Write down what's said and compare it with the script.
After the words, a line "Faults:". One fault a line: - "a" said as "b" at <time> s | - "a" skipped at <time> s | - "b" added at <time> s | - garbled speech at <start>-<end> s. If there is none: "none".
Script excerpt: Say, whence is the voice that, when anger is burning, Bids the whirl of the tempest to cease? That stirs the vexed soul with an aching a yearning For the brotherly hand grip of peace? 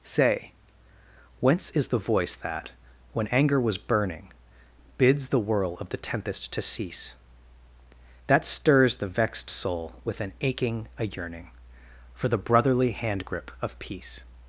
Say, whence is the voice that, when anger was burning, Bids the whirl of the tempest to cease? That stirs the vexed soul with an aching a yearning For the brotherly hand grip of peace?
Faults:
- "is" said as "was" at 3.6 s